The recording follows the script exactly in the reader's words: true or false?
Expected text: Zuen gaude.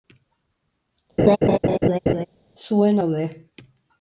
true